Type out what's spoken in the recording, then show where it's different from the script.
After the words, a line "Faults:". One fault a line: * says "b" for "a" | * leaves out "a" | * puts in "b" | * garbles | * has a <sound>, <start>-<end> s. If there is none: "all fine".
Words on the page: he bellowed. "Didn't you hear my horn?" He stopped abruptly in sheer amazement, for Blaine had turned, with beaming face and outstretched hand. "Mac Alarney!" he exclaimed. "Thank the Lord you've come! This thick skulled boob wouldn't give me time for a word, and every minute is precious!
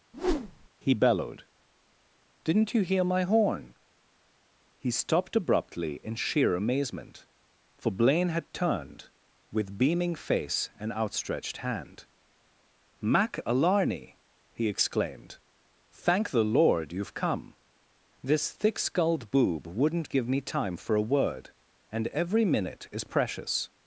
he bellowed. "Didn't you hear my horn?" He stopped abruptly in sheer amazement, for Blaine had turned, with beaming face and outstretched hand. "Mac Alarney!" he exclaimed. "Thank the Lord you've come! This thick skulled boob wouldn't give me time for a word, and every minute is precious!
Faults:
* has a whoosh, 0.1-0.7 s